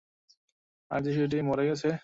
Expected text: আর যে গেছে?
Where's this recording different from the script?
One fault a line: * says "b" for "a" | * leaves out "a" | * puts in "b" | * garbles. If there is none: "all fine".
* puts in "শিশুটি মরে"